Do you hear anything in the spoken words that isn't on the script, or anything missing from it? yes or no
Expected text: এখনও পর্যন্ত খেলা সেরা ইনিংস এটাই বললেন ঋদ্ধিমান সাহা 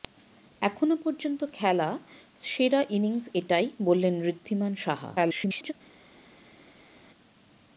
yes